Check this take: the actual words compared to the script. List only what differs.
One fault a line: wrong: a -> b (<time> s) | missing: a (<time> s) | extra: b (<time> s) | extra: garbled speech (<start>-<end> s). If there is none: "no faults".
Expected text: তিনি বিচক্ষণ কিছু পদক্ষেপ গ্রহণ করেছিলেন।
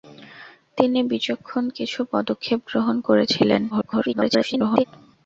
extra: garbled speech (3.7-4.8 s)